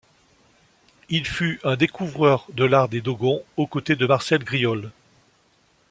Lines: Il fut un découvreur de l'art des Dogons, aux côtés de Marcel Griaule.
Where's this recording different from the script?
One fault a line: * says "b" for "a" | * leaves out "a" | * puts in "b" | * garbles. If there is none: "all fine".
all fine